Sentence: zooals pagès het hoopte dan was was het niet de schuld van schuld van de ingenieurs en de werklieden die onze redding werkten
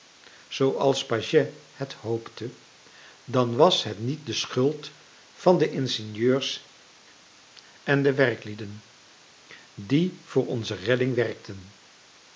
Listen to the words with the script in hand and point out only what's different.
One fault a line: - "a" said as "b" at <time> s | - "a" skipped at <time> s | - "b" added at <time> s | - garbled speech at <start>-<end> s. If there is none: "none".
- "was" skipped at 3.8 s
- "schuld van" skipped at 5.6 s
- "voor" added at 10.2 s